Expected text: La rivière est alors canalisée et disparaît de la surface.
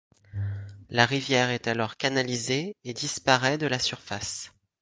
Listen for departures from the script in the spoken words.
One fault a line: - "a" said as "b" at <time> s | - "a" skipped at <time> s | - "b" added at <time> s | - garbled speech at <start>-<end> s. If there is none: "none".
none